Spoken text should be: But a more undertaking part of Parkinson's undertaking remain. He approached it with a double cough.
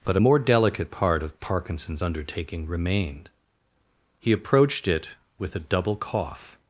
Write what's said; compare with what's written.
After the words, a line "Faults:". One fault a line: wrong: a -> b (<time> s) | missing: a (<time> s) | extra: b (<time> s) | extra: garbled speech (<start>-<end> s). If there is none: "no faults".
But a more delicate part of Parkinson's undertaking remained. He approached it with a double cough.
Faults:
wrong: undertaking -> delicate (0.4 s)
wrong: remain -> remained (2.7 s)